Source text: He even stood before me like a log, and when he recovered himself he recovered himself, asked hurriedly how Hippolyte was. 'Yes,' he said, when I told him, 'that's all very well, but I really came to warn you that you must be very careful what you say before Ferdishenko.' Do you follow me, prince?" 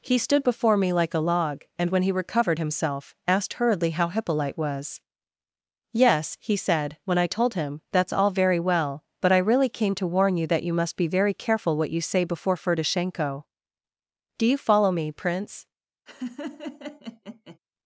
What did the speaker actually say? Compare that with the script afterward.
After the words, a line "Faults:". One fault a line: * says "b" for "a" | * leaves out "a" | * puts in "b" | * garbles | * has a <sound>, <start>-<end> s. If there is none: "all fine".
He stood before me like a log, and when he recovered himself, asked hurriedly how Hippolyte was. 'Yes,' he said, when I told him, 'that's all very well, but I really came to warn you that you must be very careful what you say before Ferdishenko.' Do you follow me, prince?"
Faults:
* leaves out "even"
* leaves out "he recovered himself"
* has a laugh, 16.1-17.6 s